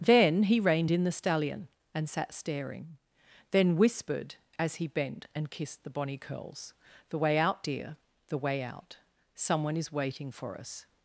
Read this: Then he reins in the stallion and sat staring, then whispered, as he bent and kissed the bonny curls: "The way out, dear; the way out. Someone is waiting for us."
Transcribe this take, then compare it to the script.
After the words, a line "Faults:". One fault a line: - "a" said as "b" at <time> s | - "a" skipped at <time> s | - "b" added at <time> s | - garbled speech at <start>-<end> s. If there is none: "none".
Then he reined in the stallion and sat staring, then whispered, as he bent and kissed the bonny curls: "The way out, dear; the way out. Someone is waiting for us."
Faults:
- "reins" said as "reined" at 0.6 s